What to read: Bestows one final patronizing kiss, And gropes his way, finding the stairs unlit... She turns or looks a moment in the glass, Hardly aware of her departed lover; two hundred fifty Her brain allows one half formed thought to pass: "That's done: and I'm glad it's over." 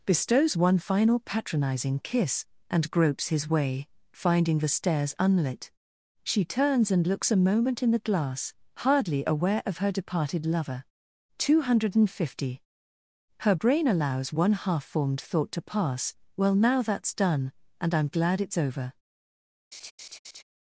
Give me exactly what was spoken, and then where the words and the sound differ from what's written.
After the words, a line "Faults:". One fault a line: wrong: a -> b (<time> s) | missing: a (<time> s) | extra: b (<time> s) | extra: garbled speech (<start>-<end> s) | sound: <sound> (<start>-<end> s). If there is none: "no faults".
Bestows one final patronizing kiss, And gropes his way, finding the stairs unlit... She turns and looks a moment in the glass, Hardly aware of her departed lover; two hundred fifty Her brain allows one half formed thought to pass: "Well now that's done: and I'm glad it's over."
Faults:
wrong: or -> and (6.9 s)
extra: Well now (16.4 s)
sound: laugh (19.7-20.4 s)